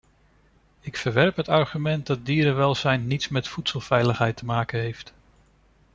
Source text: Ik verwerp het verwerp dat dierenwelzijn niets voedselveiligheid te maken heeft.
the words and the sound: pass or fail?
fail